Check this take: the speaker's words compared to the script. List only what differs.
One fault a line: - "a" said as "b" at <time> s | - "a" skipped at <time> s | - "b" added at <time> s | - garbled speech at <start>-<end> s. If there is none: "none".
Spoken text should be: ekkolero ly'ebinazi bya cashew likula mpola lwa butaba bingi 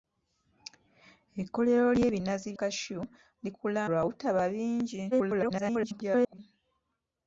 - "bya" skipped at 2.5 s
- "mpola" skipped at 3.8 s
- garbled speech at 5.1-6.4 s